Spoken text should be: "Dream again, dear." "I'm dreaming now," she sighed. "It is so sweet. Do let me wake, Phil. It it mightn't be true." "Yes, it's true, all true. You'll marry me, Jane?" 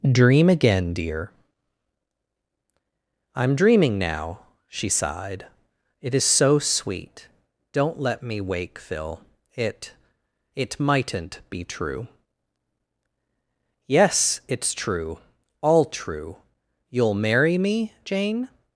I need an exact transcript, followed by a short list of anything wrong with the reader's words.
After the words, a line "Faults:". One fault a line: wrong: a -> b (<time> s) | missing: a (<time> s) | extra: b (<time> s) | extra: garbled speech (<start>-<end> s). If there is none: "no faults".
"Dream again, dear." "I'm dreaming now," she sighed. "It is so sweet. Don't let me wake, Phil. It it mightn't be true." "Yes, it's true, all true. You'll marry me, Jane?"
Faults:
wrong: Do -> Don't (7.7 s)